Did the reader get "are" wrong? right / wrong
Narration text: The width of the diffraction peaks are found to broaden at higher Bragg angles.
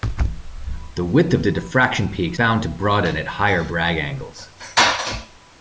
wrong